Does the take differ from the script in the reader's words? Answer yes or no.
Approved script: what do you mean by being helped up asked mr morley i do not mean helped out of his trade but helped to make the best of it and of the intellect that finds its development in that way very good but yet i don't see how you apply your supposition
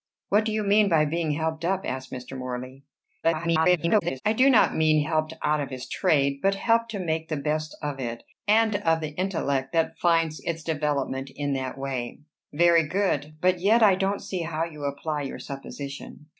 yes